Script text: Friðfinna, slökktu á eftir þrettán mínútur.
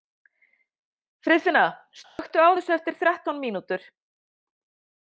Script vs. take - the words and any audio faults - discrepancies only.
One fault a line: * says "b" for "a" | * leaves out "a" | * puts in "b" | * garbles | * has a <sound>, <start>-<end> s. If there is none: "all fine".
* has a dropout, 2.0-2.2 s
* puts in "þessu"